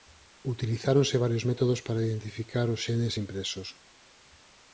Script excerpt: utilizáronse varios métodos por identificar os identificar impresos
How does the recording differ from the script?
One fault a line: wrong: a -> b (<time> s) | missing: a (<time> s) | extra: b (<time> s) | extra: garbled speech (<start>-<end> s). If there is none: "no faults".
wrong: por -> para (1.9 s)
wrong: identificar -> xenes (2.9 s)